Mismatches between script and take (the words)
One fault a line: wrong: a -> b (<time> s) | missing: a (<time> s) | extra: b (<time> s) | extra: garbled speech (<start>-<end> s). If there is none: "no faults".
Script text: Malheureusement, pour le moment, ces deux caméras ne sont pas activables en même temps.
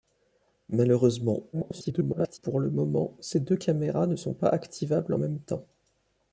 extra: garbled speech (1.5-2.4 s)